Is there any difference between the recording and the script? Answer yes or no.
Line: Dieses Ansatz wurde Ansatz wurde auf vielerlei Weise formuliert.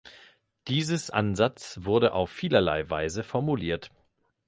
yes